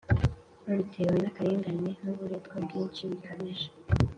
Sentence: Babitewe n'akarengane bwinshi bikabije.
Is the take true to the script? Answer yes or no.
no